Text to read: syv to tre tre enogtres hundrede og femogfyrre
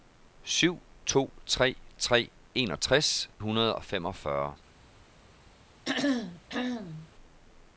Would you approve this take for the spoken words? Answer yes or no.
yes